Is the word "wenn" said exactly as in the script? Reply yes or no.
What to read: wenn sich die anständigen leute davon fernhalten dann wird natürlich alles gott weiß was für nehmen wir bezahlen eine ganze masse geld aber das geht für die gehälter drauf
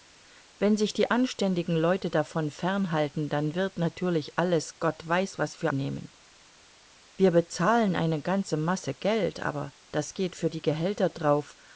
yes